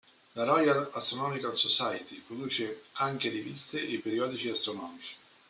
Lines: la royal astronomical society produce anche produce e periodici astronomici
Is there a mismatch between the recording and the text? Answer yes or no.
yes